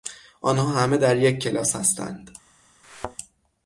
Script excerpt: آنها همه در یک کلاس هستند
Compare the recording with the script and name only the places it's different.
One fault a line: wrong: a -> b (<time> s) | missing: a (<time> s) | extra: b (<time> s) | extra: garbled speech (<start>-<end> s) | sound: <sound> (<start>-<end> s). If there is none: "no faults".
sound: thud (2.8-3.2 s)